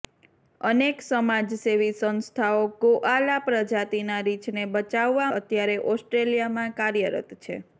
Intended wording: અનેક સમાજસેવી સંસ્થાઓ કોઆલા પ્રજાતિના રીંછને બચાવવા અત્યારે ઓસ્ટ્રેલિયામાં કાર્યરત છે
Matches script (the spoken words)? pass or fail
pass